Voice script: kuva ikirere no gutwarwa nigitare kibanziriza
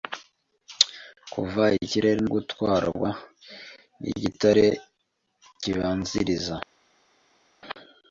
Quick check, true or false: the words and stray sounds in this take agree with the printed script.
false